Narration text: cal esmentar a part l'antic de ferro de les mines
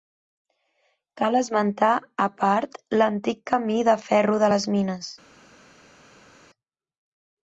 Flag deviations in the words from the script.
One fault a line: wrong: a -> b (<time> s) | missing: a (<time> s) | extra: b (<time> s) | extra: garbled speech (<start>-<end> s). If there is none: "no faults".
extra: camí (3.5 s)